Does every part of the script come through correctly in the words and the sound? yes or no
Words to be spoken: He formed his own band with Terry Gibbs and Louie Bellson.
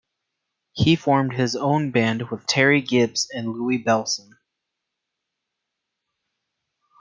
yes